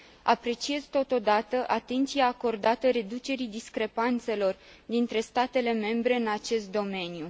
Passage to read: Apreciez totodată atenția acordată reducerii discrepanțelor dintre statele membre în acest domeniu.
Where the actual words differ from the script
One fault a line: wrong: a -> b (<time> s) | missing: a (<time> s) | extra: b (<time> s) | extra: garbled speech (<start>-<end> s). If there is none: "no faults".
no faults